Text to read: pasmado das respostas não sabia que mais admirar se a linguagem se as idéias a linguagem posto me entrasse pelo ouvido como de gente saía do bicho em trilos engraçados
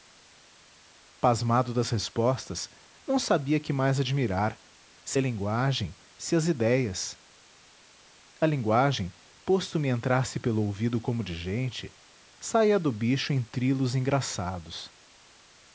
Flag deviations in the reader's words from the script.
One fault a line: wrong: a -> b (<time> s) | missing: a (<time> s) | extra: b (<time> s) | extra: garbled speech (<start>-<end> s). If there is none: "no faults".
no faults